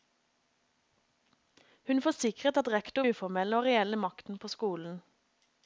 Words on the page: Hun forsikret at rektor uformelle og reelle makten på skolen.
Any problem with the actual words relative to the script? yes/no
no